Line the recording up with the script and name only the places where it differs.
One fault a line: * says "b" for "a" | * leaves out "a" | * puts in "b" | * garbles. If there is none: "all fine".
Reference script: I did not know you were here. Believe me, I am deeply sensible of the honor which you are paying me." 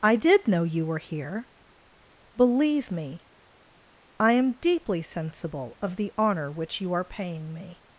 * leaves out "not"